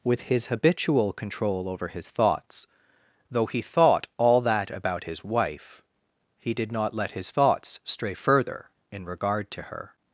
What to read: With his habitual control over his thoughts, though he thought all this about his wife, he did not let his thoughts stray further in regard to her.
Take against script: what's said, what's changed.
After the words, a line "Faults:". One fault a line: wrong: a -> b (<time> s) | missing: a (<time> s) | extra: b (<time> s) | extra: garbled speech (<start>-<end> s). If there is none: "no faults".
With his habitual control over his thoughts, though he thought all that about his wife, he did not let his thoughts stray further in regard to her.
Faults:
wrong: this -> that (4.4 s)